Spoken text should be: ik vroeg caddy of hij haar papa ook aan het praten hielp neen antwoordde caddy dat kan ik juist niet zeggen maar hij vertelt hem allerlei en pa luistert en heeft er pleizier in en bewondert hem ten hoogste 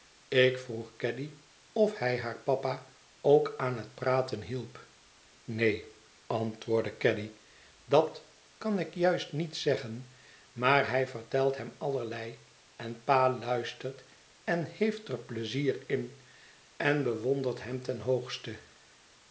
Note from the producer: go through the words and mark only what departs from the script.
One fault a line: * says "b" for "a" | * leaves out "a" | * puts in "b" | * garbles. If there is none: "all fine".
all fine